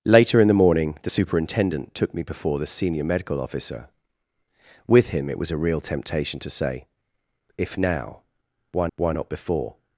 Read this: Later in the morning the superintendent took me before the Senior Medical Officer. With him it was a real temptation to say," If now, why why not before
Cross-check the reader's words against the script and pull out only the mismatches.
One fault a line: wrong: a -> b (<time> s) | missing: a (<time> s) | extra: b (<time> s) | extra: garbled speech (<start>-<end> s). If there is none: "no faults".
no faults